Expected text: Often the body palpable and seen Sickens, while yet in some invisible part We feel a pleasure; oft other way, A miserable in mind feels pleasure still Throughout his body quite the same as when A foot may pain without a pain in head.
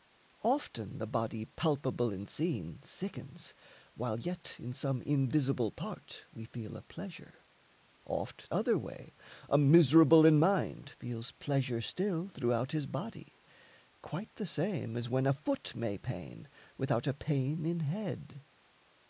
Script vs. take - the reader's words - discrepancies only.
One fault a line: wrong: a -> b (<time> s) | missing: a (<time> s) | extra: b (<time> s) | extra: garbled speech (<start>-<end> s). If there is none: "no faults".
no faults